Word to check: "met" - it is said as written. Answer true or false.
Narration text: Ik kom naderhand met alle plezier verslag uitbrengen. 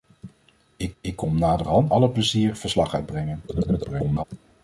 false